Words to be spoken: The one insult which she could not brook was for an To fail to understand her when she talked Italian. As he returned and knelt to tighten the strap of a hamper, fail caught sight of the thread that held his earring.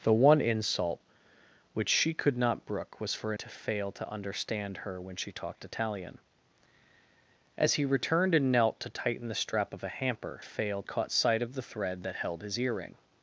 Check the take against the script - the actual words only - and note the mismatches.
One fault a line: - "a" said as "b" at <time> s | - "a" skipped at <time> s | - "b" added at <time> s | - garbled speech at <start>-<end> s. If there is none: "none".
none